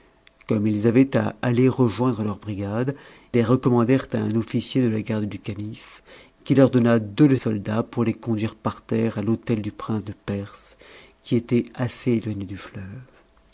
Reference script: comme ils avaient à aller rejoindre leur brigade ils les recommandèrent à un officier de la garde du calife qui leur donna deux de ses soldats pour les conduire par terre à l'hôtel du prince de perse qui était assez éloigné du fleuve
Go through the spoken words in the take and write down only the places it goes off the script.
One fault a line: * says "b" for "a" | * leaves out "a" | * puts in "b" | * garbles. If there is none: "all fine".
* leaves out "ils"
* leaves out "ses"